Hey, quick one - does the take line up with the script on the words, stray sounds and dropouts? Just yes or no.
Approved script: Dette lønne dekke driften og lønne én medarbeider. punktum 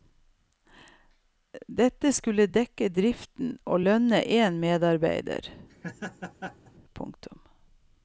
no